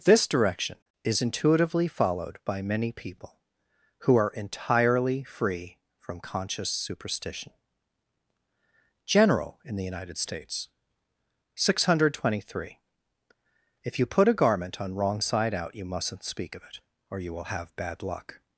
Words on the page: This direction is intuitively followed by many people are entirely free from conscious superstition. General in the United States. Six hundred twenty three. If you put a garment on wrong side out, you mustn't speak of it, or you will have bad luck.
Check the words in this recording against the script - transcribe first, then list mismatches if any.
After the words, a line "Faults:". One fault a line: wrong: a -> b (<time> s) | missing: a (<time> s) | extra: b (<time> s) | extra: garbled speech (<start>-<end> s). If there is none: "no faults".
This direction is intuitively followed by many people who are entirely free from conscious superstition. General in the United States. Six hundred twenty three. If you put a garment on wrong side out, you mustn't speak of it, or you will have bad luck.
Faults:
extra: who (4.0 s)